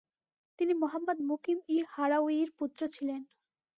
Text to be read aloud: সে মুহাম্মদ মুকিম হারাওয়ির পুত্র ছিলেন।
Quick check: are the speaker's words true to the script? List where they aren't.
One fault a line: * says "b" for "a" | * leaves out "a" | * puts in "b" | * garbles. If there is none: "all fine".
* says "তিনি" for "সে"
* puts in "ই"